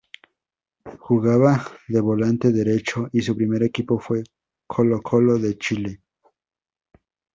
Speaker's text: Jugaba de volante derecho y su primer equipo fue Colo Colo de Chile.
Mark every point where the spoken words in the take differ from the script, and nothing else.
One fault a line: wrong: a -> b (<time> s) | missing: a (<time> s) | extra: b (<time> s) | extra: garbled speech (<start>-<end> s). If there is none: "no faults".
no faults